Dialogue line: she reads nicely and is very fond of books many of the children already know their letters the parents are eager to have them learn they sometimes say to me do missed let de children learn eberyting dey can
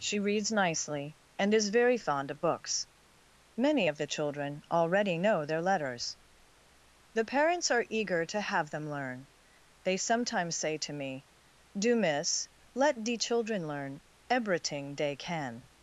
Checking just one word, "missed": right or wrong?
wrong